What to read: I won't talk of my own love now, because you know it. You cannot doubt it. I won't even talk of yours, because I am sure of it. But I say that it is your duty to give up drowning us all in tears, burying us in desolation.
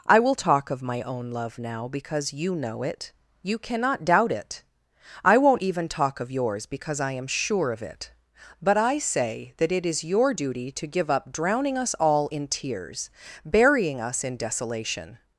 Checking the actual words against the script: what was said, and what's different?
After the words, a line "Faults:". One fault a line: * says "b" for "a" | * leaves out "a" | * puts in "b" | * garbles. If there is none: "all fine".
I will talk of my own love now, because you know it. You cannot doubt it. I won't even talk of yours, because I am sure of it. But I say that it is your duty to give up drowning us all in tears, burying us in desolation.
Faults:
* says "will" for "won't"